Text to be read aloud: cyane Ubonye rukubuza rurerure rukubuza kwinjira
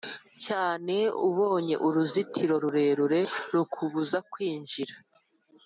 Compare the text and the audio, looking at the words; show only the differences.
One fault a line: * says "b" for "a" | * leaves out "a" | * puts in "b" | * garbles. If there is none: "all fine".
* says "uruzitiro" for "rukubuza"